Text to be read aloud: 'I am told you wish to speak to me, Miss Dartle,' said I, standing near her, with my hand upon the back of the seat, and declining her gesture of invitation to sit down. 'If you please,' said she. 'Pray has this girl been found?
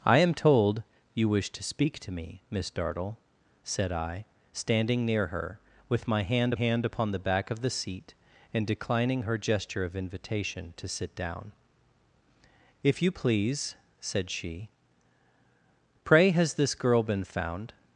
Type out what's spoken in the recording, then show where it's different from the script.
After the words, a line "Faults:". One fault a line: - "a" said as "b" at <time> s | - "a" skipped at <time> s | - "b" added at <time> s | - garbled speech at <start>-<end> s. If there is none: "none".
'I am told you wish to speak to me, Miss Dartle,' said I, standing near her, with my hand hand upon the back of the seat, and declining her gesture of invitation to sit down. 'If you please,' said she. 'Pray has this girl been found?
Faults:
- "hand" added at 6.5 s